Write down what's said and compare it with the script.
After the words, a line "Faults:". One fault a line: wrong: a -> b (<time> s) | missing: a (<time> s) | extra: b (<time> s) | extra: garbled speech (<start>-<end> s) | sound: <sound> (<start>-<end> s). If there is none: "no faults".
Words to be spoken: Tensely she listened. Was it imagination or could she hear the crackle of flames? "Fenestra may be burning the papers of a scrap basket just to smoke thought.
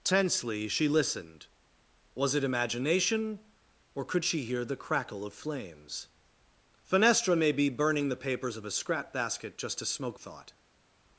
Tensely she listened. Was it imagination or could she hear the crackle of flames? "Fenestra may be burning the papers of a scrap basket just to smoke thought.
Faults:
no faults